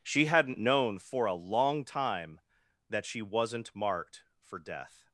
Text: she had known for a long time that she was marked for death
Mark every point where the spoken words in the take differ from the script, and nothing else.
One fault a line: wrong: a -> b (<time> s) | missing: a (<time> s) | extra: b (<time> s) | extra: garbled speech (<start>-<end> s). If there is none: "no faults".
wrong: had -> hadn't (0.2 s)
wrong: was -> wasn't (3.2 s)